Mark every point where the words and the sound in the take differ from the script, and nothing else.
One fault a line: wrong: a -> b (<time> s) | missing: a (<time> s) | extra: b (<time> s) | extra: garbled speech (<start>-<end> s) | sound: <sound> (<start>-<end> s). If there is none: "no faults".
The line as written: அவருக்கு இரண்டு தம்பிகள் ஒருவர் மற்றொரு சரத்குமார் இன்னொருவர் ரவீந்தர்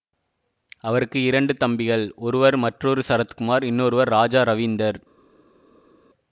extra: ராஜா (4.1 s)